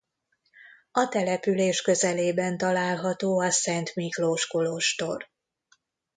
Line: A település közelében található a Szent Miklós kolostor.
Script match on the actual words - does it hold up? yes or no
yes